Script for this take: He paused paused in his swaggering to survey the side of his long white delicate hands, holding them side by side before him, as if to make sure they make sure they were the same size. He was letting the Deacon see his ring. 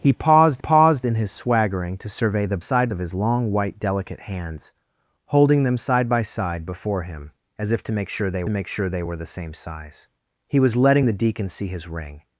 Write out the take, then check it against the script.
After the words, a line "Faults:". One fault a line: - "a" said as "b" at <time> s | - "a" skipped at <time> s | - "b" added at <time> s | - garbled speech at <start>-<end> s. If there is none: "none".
He paused paused in his swaggering to survey the side of his long white delicate hands, holding them side by side before him, as if to make sure they make sure they were the same size. He was letting the Deacon see his ring.
Faults:
none